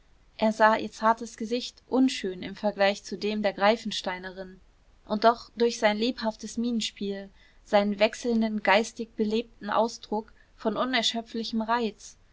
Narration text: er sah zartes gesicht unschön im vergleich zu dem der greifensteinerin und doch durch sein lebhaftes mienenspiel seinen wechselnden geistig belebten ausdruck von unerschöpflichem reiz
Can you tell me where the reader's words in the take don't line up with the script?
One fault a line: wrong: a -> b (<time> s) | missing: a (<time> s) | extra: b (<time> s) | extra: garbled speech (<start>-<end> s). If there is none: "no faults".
extra: ihr (0.8 s)